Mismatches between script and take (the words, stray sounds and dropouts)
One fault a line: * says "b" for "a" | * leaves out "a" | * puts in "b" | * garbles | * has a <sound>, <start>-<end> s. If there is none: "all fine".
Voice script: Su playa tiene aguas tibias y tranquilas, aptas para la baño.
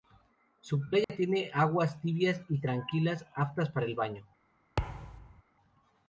* has a dropout, 1.0-1.1 s
* says "el" for "la"
* has a thud, 4.8-5.4 s